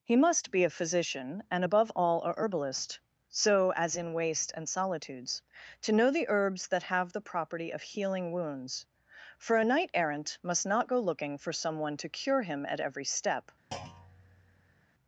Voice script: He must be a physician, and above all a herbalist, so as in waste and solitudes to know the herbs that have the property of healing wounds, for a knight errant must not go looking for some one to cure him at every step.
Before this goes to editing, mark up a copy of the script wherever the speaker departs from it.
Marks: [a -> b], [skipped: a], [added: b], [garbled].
He must be a physician, and above all a herbalist, so as in waste and solitudes to know the herbs that have the property of healing wounds, for a knight errant must not go looking for some one to cure him at every step.